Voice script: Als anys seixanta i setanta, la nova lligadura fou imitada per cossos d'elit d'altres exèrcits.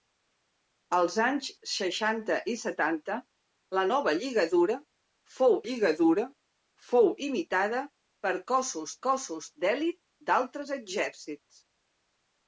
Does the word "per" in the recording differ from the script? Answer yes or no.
no